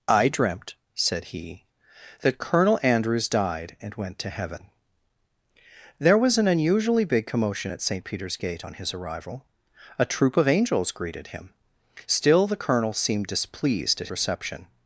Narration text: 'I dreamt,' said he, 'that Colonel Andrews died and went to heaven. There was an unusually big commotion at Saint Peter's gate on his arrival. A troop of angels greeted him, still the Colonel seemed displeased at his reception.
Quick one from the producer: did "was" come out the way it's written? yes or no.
yes